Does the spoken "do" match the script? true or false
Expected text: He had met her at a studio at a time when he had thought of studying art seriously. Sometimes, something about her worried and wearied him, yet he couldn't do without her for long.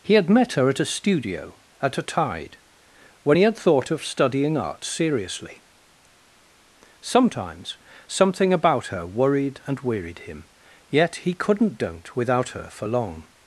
false